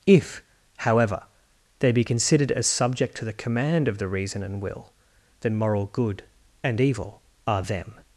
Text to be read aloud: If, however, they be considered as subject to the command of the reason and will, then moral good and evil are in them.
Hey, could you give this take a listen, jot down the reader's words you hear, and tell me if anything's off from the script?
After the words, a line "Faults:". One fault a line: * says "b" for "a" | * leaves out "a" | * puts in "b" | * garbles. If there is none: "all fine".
If, however, they be considered as subject to the command of the reason and will, then moral good and evil are them.
Faults:
* leaves out "in"